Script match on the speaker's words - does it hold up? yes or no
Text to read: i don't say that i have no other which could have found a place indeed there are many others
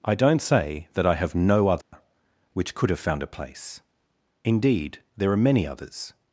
yes